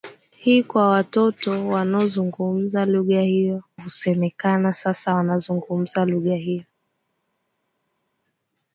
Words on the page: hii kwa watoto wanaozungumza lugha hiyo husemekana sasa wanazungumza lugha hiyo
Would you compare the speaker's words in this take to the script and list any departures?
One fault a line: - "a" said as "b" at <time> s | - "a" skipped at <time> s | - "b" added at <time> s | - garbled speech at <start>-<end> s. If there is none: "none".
none